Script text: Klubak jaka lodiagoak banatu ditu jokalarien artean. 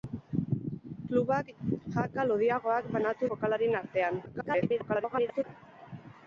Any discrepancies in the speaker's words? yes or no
yes